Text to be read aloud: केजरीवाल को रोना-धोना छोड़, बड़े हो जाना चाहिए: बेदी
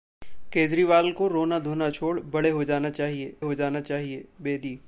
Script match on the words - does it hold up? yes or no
no